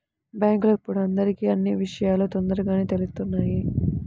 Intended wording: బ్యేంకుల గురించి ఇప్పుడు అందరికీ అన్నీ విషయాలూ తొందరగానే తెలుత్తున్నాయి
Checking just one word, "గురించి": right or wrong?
wrong